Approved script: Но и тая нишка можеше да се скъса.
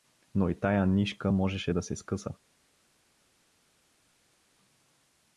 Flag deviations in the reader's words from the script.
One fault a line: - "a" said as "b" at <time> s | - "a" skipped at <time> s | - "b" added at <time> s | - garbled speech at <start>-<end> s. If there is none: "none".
none